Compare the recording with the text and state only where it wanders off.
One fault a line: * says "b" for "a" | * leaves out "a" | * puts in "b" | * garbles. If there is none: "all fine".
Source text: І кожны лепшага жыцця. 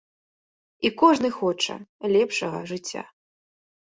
* puts in "хоча"